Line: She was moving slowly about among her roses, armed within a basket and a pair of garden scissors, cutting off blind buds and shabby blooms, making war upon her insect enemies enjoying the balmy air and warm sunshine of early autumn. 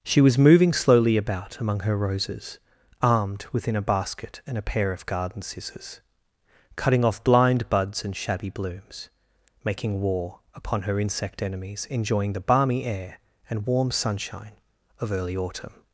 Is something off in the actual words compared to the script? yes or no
no